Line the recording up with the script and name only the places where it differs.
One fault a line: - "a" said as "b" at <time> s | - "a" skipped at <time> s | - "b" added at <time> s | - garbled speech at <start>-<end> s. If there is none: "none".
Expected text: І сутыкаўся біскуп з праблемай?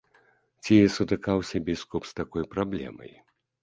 - "І" said as "Ці" at 0.6 s
- "такой" added at 2.2 s